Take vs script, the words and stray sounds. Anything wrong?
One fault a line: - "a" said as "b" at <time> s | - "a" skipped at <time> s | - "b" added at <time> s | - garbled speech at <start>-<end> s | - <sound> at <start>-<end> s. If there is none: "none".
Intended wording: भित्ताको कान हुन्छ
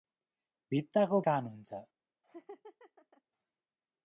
- laugh at 2.2-3.2 s